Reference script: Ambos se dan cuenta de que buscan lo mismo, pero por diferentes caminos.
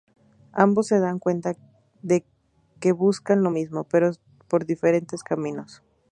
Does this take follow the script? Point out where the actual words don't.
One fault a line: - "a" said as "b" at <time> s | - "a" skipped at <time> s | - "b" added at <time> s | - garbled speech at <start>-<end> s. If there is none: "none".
none